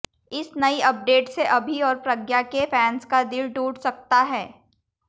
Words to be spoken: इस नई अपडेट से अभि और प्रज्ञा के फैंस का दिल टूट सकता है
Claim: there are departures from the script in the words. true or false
false